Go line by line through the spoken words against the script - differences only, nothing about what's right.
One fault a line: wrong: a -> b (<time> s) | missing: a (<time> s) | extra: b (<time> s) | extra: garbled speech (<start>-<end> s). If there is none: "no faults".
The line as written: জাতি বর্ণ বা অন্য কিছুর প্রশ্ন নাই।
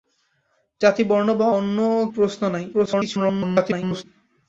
missing: কিছুর (1.8 s)
extra: garbled speech (2.7-4.0 s)